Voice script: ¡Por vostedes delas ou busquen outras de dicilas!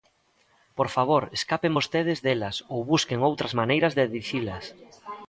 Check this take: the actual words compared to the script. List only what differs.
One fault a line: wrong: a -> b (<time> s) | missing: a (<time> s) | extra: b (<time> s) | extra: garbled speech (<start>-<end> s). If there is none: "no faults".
extra: favor escapen (0.9 s)
extra: maneiras (3.6 s)